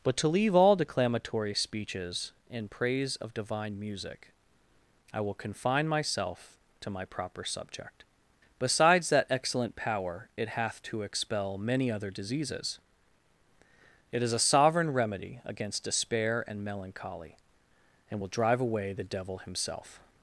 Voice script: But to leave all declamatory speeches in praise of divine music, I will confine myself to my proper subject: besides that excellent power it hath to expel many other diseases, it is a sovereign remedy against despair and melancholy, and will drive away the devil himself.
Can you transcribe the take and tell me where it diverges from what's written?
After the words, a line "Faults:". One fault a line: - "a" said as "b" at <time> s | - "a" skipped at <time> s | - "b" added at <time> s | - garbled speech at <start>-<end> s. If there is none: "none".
But to leave all declamatory speeches in praise of divine music, I will confine myself to my proper subject: besides that excellent power it hath to expel many other diseases, it is a sovereign remedy against despair and melancholy, and will drive away the devil himself.
Faults:
none